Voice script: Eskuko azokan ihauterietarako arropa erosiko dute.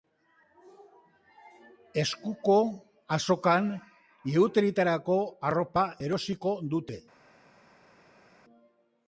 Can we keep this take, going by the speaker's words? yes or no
yes